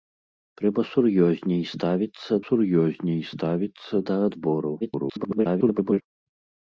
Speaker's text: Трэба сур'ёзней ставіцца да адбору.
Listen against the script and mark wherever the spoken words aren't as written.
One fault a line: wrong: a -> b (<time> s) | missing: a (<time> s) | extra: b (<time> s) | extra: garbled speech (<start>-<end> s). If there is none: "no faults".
extra: сур'ёзней ставіцца (2.5 s)
extra: garbled speech (4.8-6.0 s)